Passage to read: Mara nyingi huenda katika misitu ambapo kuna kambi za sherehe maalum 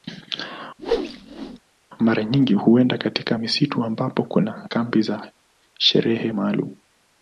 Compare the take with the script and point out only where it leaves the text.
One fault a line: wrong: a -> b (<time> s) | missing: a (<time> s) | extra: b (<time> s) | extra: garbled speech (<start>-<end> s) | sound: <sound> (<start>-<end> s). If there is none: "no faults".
sound: whoosh (0.8-1.6 s)